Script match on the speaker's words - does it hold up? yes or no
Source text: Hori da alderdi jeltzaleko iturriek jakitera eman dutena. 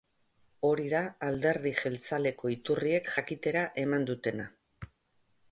yes